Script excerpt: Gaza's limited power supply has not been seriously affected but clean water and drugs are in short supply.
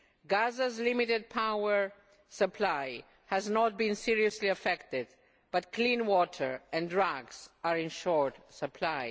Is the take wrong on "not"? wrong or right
right